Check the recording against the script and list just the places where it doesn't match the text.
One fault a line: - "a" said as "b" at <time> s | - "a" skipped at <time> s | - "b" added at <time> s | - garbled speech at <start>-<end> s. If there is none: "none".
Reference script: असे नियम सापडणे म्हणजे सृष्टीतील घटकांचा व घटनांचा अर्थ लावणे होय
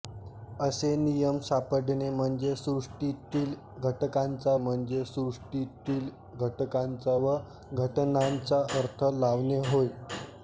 - "म्हणजे सृष्टीतील घटकांचा" added at 4.6 s